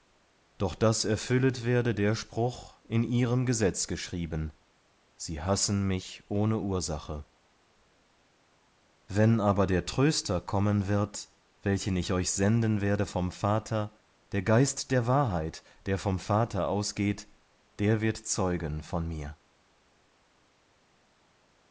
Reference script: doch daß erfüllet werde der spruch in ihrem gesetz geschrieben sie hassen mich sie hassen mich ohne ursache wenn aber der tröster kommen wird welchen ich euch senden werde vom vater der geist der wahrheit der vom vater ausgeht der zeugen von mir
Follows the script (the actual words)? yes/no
no